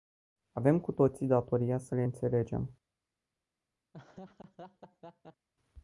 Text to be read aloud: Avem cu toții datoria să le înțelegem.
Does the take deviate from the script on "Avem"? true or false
false